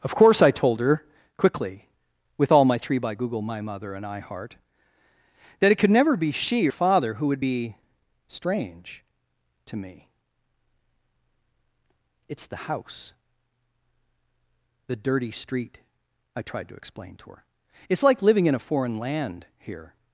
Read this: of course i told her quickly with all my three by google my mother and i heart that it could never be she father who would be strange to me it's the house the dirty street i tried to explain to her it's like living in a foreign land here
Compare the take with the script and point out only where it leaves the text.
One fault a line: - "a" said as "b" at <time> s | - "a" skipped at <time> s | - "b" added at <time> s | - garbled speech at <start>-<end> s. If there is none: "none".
none